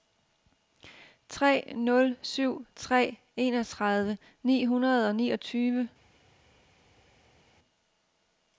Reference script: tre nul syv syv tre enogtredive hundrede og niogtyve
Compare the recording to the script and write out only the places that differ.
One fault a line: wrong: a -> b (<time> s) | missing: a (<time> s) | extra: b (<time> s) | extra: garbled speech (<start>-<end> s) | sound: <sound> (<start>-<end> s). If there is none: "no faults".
missing: syv (2.6 s)
extra: ni (4.4 s)